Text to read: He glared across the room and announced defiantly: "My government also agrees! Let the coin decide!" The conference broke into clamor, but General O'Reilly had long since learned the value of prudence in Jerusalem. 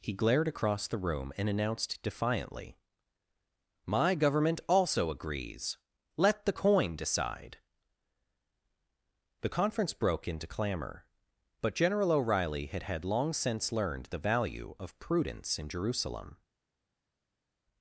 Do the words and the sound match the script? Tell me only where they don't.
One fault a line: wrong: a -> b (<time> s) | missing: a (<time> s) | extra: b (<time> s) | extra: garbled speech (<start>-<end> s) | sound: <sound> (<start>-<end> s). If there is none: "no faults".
extra: had (12.8 s)